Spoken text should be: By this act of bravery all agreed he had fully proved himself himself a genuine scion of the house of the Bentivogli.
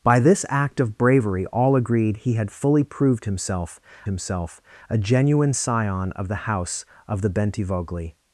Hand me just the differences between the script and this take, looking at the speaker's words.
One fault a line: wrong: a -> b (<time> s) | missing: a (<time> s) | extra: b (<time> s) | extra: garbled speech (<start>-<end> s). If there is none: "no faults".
no faults